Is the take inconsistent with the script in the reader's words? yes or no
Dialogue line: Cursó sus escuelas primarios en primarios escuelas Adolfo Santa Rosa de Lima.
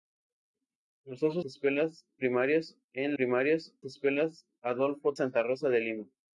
no